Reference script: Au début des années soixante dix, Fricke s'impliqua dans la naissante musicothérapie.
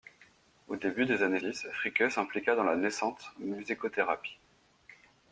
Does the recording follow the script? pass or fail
fail